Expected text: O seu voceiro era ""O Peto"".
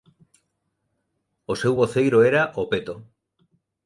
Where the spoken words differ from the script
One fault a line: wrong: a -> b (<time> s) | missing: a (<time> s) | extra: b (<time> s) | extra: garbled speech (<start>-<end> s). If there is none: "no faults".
no faults